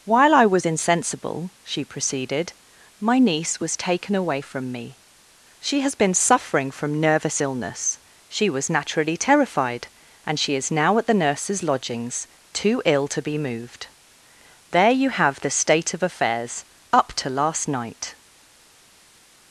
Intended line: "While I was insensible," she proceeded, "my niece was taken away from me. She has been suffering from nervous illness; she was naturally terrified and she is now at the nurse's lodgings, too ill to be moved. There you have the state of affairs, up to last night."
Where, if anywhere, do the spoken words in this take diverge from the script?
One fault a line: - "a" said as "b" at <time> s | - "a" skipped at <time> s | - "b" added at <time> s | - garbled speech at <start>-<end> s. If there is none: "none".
none